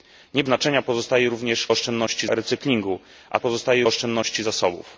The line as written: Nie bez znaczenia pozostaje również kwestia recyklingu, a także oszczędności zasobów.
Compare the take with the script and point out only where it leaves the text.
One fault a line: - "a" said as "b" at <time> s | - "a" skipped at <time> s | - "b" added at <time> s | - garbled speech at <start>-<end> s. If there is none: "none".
- "bez" skipped at 0.4 s
- "kwestia" said as "oszczędności" at 1.7 s
- "także" said as "pozostaje" at 3.4 s